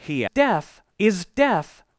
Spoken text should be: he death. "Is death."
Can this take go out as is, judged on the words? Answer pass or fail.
pass